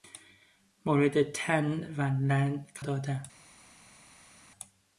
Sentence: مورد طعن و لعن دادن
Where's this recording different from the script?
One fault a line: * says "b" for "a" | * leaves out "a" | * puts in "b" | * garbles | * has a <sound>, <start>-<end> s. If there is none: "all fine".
all fine